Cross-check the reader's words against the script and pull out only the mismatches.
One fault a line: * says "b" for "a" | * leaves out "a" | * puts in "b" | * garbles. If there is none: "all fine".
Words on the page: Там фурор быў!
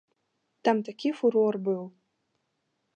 * puts in "такі"